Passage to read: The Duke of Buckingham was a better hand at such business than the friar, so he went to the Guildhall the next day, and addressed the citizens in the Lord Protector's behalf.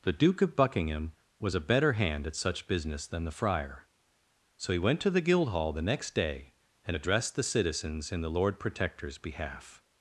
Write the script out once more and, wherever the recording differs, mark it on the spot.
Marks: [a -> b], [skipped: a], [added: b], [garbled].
The Duke of Buckingham was a better hand at such business than the friar, so he went to the Guildhall the next day, and addressed the citizens in the Lord Protector's behalf.